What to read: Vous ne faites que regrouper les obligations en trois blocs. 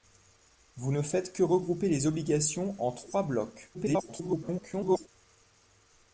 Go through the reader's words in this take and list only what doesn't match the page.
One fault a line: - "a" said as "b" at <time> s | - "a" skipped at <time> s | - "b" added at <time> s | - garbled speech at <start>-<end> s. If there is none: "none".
- garbled speech at 3.7-5.1 s